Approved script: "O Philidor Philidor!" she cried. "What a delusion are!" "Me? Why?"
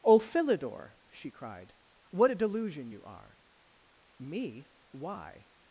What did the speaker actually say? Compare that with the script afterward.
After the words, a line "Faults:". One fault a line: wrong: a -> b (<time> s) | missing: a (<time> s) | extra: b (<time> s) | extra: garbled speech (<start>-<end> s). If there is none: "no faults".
"O Philidor!" she cried. "What a delusion you are!" "Me? Why?"
Faults:
missing: Philidor (0.9 s)
extra: you (2.9 s)